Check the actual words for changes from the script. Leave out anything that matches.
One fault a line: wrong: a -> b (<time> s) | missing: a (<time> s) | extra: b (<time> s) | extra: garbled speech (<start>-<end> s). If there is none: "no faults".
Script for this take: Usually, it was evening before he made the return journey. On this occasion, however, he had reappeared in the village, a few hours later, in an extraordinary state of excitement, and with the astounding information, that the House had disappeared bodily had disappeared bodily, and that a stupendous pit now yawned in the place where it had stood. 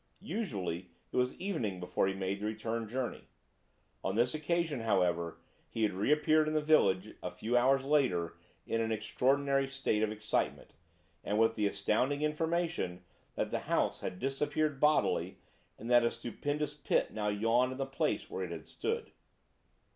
missing: had disappeared bodily (15.4 s)